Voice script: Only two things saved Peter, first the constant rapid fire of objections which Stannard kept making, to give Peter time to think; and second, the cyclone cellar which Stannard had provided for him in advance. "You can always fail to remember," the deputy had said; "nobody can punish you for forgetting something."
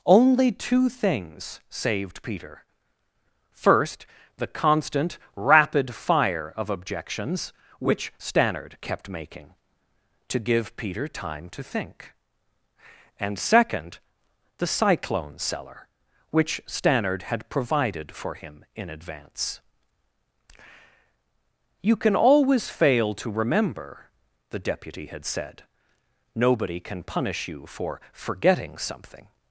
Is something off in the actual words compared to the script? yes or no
no